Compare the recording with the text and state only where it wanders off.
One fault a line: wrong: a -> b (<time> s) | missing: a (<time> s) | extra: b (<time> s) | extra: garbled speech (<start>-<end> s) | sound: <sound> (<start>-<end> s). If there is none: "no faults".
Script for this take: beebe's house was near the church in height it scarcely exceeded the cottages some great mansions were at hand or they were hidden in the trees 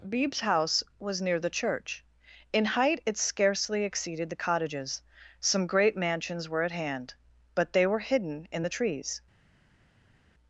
wrong: or -> but (7.5 s)